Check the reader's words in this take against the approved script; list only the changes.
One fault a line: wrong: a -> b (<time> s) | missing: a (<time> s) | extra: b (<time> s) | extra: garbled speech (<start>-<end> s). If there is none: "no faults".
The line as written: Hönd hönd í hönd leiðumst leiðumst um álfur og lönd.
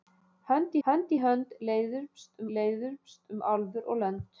no faults